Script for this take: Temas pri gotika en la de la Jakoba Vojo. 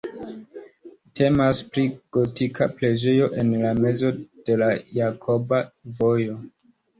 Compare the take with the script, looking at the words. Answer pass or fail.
fail